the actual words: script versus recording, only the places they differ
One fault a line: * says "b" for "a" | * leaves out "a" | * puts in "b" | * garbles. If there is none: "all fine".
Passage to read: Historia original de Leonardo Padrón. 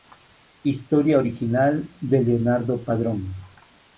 all fine